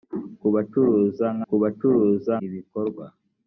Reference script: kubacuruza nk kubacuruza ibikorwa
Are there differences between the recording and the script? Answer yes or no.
no